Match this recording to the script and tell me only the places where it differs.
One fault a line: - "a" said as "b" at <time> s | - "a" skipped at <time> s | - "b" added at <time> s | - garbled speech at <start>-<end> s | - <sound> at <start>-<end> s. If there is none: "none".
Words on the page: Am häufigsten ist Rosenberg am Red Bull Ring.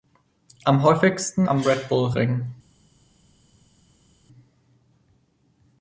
- "ist Rosenberg" skipped at 1.4 s